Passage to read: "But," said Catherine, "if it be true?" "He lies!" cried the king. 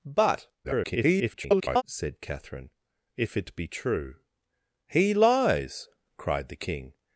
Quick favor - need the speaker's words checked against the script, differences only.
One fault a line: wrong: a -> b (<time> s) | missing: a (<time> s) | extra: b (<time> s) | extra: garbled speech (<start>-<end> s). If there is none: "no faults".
extra: garbled speech (0.6-1.8 s)